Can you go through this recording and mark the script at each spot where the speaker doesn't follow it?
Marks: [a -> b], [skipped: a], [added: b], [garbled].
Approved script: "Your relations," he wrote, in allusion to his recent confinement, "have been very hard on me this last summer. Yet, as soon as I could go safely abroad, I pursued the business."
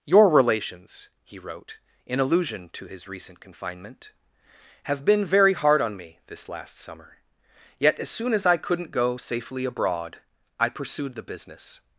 "Your relations," he wrote, in allusion to his recent confinement, "have been very hard on me this last summer. Yet, as soon as I [could -> couldn't] go safely abroad, I pursued the business."